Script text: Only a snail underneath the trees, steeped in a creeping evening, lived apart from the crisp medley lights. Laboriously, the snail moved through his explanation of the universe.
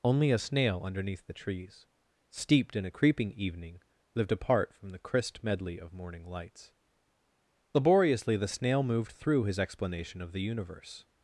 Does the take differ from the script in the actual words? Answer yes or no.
yes